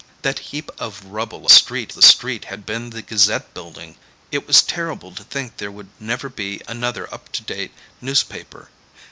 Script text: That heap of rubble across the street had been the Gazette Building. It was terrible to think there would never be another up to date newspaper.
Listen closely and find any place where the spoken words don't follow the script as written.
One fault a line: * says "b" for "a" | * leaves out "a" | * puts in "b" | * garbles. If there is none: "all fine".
* says "street" for "across"